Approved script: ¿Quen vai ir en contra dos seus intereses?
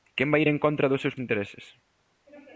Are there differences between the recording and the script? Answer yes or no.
no